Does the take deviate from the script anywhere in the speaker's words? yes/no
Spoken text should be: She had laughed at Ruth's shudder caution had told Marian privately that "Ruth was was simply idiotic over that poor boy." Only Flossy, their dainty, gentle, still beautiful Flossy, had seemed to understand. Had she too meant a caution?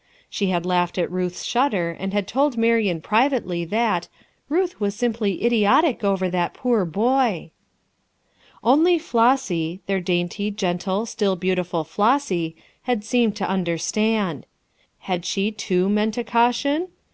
yes